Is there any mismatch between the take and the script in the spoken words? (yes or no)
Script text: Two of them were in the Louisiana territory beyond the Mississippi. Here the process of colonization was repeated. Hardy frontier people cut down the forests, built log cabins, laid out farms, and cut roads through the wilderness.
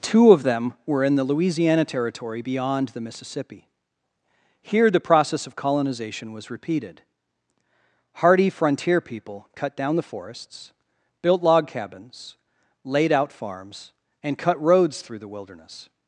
no